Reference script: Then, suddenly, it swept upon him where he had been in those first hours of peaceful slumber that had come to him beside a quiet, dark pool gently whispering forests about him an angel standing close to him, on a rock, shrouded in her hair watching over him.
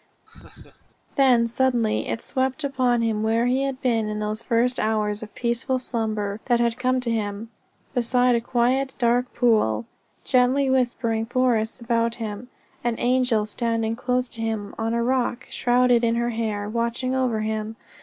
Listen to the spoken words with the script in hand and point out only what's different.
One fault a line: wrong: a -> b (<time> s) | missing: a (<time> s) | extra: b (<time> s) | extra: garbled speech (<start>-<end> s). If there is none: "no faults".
no faults